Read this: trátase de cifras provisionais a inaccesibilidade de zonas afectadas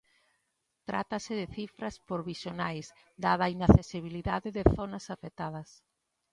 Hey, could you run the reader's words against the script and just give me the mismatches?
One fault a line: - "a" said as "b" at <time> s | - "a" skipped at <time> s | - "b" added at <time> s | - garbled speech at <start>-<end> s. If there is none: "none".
- "dada" added at 3.2 s